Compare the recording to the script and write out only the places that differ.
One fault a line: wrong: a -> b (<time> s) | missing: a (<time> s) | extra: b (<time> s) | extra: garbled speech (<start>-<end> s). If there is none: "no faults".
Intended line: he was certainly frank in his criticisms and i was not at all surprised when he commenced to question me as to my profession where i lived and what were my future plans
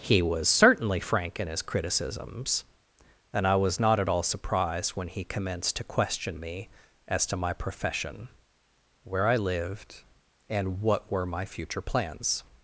no faults